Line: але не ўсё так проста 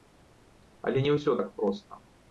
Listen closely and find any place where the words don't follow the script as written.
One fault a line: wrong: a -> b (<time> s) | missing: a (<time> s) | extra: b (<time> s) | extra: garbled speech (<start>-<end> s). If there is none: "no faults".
no faults